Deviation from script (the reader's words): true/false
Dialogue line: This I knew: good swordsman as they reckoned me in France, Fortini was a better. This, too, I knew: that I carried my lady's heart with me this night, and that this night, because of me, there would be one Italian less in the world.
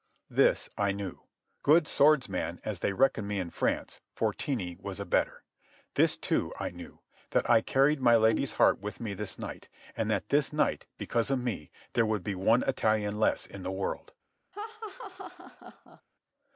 false